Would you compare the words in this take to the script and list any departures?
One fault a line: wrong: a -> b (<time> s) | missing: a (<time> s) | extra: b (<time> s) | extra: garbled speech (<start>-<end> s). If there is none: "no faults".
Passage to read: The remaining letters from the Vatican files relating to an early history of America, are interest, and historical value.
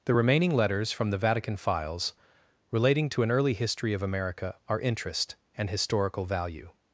no faults